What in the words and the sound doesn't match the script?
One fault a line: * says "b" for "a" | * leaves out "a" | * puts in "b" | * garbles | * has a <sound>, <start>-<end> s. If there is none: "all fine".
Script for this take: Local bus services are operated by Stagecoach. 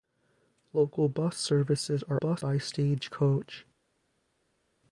* says "bus" for "operated"